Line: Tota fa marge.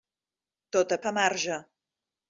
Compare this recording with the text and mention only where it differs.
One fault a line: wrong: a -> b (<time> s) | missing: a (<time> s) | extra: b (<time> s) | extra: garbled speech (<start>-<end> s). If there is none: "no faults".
no faults